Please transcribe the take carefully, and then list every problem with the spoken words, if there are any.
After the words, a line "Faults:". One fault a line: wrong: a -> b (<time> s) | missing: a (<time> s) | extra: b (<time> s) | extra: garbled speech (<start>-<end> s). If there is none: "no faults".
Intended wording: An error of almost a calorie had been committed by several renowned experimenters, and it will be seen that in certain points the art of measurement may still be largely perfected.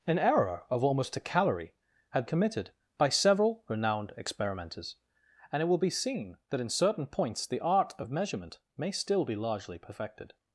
An error of almost a calorie had committed by several renowned experimenters, and it will be seen that in certain points the art of measurement may still be largely perfected.
Faults:
missing: been (2.2 s)